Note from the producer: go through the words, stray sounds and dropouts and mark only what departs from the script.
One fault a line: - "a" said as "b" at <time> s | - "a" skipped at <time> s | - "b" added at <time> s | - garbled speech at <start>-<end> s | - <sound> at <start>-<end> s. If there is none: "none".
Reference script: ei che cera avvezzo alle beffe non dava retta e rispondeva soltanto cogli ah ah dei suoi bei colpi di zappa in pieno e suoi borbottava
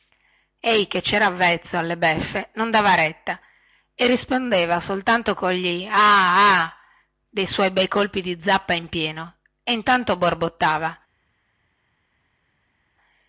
- "suoi" said as "intanto" at 9.7 s